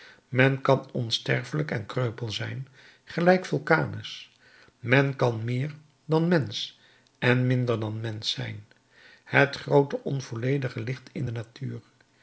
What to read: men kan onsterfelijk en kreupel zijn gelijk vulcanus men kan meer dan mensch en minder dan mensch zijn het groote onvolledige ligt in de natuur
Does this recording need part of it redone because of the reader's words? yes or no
no